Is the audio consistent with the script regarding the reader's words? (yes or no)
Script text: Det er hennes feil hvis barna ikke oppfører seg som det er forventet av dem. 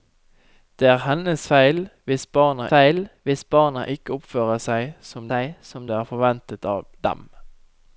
no